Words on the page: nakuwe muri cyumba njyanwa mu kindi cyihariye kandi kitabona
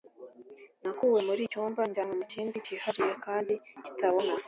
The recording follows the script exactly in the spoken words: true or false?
true